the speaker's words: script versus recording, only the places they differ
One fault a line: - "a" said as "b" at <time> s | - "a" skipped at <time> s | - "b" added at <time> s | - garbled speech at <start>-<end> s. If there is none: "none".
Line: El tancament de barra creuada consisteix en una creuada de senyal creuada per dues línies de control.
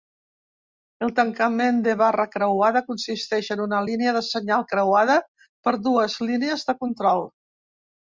- "creuada" said as "línia" at 3.9 s